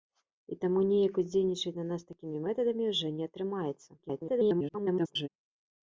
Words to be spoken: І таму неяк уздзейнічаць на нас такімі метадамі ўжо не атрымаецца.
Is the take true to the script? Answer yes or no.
no